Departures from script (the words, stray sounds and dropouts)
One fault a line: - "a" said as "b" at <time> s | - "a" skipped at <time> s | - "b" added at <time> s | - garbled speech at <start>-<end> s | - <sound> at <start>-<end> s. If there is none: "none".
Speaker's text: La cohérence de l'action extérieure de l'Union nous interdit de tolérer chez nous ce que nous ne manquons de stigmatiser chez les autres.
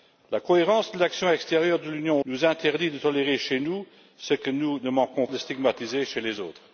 none